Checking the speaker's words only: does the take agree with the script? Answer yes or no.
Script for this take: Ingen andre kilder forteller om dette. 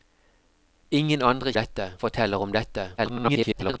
no